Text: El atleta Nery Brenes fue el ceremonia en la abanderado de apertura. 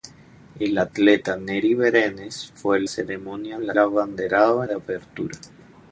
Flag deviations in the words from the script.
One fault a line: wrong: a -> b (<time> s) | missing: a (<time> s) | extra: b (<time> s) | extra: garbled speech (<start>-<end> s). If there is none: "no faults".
no faults